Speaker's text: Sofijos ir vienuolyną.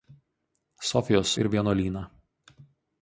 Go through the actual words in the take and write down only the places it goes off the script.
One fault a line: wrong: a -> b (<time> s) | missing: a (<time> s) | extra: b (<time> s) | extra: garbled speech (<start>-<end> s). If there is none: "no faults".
no faults